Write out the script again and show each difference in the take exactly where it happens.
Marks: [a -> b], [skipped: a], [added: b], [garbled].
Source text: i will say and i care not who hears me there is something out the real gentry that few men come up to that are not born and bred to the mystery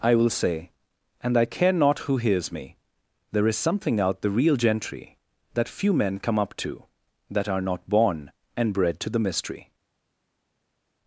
i will say and i care not who hears me there is something out the real gentry that few men come up to that are not born and bred to the mystery